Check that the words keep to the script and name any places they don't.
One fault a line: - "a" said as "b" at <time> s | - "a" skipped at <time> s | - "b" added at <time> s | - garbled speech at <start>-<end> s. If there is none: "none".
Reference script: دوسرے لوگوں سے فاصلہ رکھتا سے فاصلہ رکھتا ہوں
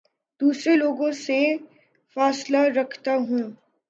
- "سے فاصلہ رکھتا" skipped at 3.1 s